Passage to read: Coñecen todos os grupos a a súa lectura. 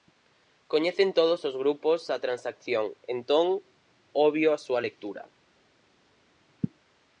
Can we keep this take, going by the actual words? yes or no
no